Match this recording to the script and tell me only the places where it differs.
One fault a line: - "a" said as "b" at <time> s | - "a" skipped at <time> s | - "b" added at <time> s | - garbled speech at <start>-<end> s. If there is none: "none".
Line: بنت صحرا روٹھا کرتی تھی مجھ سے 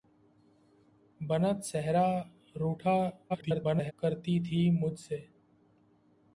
- garbled speech at 3.3-3.9 s